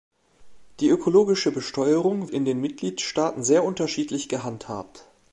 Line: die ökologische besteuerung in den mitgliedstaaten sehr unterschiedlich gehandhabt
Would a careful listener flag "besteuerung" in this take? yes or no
no